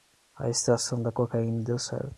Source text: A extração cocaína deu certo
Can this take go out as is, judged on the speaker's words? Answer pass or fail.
fail